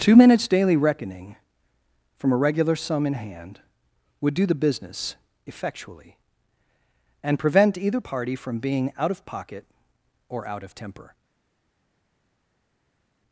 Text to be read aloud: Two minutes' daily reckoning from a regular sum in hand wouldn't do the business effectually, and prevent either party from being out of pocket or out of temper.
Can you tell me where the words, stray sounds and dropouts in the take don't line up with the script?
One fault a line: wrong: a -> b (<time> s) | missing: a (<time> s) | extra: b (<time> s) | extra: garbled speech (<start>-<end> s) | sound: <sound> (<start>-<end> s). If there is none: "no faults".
wrong: wouldn't -> would (4.2 s)